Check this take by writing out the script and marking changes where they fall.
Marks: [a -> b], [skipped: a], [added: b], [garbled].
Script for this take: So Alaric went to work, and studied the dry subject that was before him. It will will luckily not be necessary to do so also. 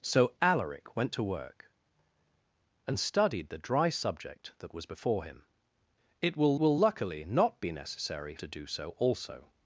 So Alaric went to work, and studied the dry subject that was before him. It will will luckily not be necessary to do so also.